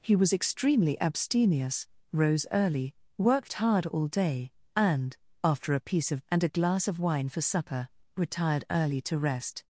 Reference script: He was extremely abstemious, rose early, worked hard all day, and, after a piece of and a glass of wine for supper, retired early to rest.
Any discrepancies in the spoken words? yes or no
no